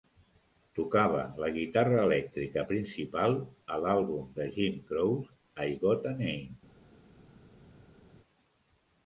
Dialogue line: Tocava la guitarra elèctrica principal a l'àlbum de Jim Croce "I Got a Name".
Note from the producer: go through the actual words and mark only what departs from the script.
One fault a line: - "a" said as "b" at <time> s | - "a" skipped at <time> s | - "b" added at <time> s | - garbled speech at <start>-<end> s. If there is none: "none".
none